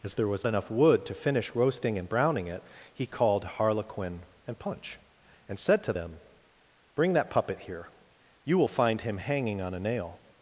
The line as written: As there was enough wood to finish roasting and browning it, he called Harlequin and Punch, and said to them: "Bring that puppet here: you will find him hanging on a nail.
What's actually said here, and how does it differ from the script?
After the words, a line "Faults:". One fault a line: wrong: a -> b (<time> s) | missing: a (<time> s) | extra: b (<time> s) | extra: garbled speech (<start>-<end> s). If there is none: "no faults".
As there was enough wood to finish roasting and browning it, he called Harlequin and Punch, and said to them: "Bring that puppet here: you will find him hanging on a nail.
Faults:
no faults